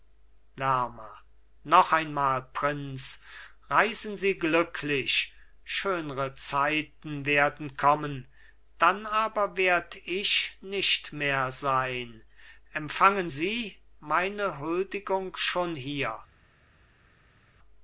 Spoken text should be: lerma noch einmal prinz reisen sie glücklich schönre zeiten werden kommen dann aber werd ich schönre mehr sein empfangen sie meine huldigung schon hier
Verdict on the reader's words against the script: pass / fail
fail